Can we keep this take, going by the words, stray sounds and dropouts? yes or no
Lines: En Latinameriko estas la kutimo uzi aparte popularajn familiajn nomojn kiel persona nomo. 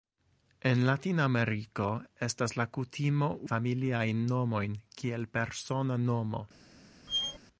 no